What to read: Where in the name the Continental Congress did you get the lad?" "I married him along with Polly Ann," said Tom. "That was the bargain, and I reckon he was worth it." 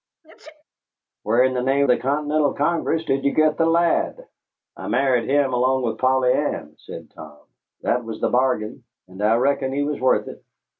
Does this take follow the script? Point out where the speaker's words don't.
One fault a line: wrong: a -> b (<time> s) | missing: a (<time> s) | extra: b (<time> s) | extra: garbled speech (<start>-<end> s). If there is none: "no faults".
no faults